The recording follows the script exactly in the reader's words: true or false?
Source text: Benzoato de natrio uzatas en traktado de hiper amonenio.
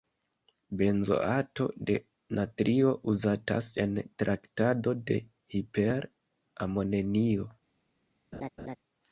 true